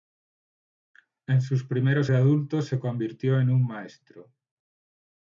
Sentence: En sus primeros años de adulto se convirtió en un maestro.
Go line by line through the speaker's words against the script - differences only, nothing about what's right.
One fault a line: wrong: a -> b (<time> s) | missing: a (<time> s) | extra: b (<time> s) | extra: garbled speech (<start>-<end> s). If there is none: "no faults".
missing: años (2.1 s)